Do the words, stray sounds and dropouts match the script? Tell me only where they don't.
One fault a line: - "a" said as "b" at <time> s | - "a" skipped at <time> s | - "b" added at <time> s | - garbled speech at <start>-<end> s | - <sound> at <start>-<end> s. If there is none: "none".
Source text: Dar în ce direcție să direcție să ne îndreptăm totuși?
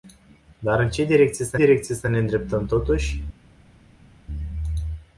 none